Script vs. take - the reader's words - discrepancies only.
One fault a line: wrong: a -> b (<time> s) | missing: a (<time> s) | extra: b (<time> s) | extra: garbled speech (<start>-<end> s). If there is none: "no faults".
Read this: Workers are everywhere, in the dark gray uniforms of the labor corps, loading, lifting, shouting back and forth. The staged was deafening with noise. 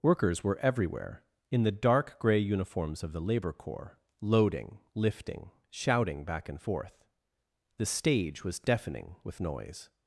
wrong: are -> were (0.4 s)
wrong: staged -> stage (7.9 s)